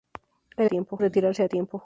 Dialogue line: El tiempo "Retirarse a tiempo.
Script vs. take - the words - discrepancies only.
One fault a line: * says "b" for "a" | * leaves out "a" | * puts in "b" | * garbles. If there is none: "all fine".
all fine